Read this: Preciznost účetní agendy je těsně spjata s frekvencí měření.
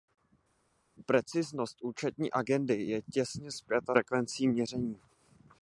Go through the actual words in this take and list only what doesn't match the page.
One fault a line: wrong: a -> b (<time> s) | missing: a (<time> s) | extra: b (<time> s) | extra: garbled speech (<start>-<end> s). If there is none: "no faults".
missing: s (3.9 s)